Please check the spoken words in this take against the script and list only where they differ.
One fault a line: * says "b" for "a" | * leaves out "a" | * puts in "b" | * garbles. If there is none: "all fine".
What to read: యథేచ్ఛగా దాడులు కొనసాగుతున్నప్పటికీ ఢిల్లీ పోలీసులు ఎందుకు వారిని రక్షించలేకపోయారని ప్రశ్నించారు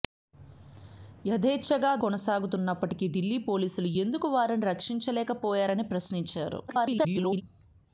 * leaves out "దాడులు"
* garbles